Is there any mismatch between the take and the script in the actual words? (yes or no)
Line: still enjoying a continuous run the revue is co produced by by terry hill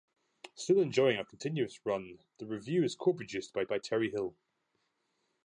no